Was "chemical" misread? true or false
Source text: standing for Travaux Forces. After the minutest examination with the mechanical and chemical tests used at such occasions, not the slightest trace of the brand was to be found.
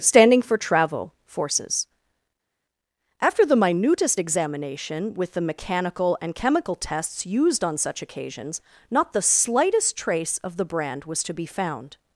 false